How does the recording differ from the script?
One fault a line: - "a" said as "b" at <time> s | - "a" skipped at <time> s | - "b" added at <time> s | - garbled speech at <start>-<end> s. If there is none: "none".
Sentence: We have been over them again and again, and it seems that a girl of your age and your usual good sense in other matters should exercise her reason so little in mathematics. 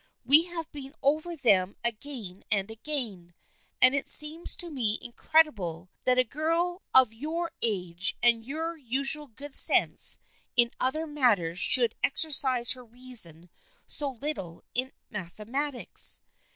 - "to me incredible" added at 4.5 s